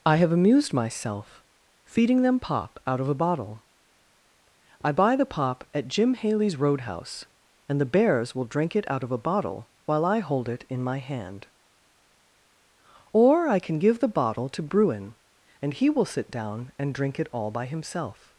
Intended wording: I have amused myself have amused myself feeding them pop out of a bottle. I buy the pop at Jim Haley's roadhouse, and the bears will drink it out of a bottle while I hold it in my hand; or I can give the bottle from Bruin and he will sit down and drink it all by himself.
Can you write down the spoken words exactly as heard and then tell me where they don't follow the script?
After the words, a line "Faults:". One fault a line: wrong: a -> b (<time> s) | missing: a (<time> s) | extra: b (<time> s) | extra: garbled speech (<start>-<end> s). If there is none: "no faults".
I have amused myself feeding them pop out of a bottle. I buy the pop at Jim Haley's roadhouse, and the bears will drink it out of a bottle while I hold it in my hand; or I can give the bottle to Bruin and he will sit down and drink it all by himself.
Faults:
missing: have amused myself (1.4 s)
wrong: from -> to (14.5 s)